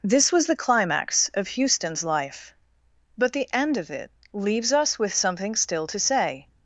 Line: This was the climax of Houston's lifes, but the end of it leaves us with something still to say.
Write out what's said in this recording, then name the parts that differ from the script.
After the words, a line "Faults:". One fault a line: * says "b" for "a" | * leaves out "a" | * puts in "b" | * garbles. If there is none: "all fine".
This was the climax of Houston's life, but the end of it leaves us with something still to say.
Faults:
* says "life" for "lifes"